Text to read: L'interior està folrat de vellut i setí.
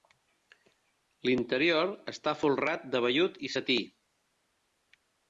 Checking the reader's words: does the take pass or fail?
pass